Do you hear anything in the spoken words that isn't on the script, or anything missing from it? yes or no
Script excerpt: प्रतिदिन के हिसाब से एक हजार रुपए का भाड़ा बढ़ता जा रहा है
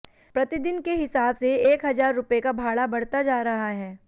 no